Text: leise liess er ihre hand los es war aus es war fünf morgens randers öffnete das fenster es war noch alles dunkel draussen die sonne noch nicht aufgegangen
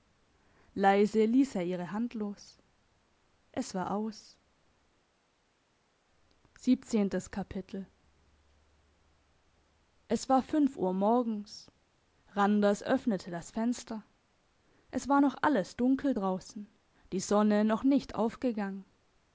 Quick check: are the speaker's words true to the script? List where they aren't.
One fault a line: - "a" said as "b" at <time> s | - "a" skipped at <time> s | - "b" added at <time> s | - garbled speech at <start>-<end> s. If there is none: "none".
- "uhr" added at 10.8 s